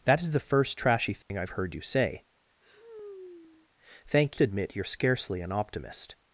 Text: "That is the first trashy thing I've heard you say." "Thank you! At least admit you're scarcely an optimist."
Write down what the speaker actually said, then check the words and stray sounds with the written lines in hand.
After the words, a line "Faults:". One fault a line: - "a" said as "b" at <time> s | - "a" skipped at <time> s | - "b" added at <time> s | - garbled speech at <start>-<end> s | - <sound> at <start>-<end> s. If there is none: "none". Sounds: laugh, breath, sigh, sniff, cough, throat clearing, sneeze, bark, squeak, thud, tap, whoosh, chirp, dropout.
"That is the first trashy thing I've heard you say." "Thank admit you're scarcely an optimist."
Faults:
- dropout at 1.2-1.3 s
- sigh at 2.6-3.7 s
- "you At least" skipped at 4.4 s